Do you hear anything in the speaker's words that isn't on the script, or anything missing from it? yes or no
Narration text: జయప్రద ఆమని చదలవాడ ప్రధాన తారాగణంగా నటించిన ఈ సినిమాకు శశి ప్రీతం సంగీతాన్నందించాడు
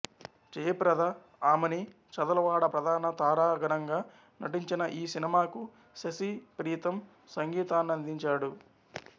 no